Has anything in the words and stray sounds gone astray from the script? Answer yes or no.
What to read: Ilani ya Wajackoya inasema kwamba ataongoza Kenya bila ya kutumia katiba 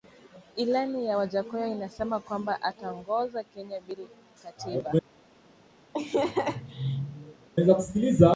yes